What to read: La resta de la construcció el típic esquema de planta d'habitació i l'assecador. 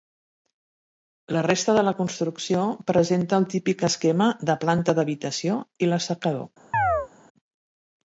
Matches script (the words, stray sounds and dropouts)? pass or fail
fail